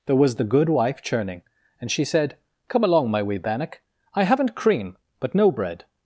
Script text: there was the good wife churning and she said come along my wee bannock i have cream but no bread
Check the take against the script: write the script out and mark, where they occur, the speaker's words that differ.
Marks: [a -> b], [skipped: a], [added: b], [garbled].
there was the good wife churning and she said come along my wee bannock i [have -> haven't] cream but no bread